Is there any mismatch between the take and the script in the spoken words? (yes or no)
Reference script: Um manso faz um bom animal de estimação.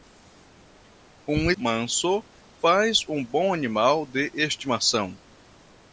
no